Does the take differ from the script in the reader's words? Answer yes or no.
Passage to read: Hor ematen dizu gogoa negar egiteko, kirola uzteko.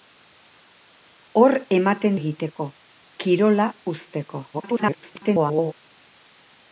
yes